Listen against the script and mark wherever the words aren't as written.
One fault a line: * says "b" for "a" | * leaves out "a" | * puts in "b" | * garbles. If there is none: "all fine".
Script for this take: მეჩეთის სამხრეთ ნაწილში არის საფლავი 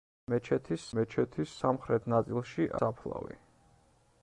* puts in "მეჩეთის"
* leaves out "არის"